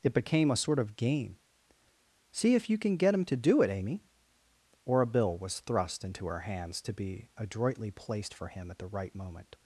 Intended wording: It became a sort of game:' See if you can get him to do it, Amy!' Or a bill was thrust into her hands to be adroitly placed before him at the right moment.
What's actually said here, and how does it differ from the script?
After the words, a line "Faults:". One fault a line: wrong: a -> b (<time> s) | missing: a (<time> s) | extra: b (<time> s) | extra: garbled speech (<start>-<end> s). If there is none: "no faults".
It became a sort of game:' See if you can get him to do it, Amy!' Or a bill was thrust into her hands to be adroitly placed for him at the right moment.
Faults:
wrong: before -> for (8.3 s)